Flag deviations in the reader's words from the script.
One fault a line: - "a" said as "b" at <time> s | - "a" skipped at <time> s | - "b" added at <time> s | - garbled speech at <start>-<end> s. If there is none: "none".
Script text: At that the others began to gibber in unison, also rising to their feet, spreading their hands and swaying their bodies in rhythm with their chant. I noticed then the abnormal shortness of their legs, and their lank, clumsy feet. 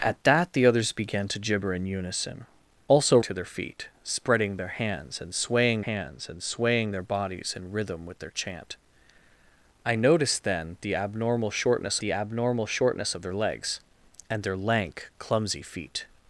- "rising" skipped at 3.2 s
- "hands and swaying" added at 5.8 s
- "the abnormal shortness" added at 12.0 s